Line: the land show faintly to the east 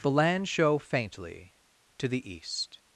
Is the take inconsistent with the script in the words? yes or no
no